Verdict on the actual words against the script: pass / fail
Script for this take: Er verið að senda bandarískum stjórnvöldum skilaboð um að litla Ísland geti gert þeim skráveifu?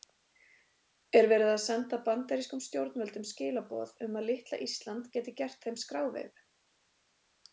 pass